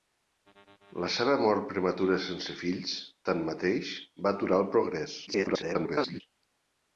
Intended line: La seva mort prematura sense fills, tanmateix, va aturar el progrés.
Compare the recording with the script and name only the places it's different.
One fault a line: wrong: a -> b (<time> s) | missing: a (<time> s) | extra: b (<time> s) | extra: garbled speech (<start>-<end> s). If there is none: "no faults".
extra: garbled speech (5.3-6.2 s)